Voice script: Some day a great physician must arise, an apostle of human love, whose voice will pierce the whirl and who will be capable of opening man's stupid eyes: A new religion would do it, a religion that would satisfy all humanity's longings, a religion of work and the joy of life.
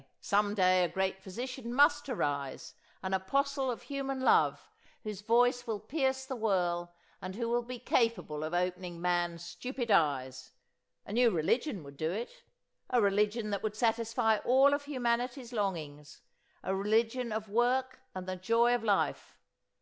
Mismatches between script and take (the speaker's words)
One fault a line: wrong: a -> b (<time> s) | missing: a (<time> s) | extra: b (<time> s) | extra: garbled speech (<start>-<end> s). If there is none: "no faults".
extra: of (14.7 s)